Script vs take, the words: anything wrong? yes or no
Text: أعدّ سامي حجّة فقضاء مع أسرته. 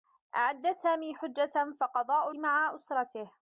no